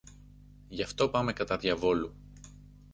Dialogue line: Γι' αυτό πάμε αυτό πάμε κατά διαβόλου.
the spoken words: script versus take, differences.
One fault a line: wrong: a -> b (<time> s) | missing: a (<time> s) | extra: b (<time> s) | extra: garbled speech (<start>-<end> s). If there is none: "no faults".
missing: αυτό πάμε (1.3 s)